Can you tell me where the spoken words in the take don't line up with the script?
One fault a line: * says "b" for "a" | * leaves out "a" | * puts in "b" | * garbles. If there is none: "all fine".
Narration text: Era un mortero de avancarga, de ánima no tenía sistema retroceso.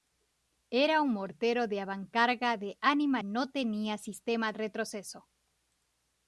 all fine